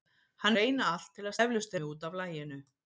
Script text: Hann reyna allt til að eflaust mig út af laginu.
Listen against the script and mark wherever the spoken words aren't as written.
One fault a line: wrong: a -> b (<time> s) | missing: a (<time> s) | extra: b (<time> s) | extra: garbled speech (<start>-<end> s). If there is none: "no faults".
no faults